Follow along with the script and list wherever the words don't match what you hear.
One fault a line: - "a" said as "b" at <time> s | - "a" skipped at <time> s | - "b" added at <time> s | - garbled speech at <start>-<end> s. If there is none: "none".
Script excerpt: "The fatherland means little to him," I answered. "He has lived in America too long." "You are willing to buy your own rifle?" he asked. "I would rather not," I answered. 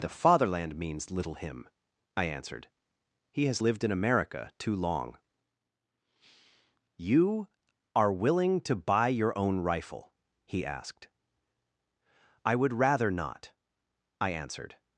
- "to" skipped at 1.4 s